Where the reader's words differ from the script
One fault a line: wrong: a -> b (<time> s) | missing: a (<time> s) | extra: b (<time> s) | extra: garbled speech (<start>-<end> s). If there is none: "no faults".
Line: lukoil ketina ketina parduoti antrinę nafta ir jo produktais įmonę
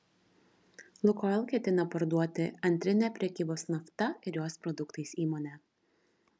missing: ketina (1.9 s)
extra: prekybos (3.2 s)
wrong: jo -> jos (4.4 s)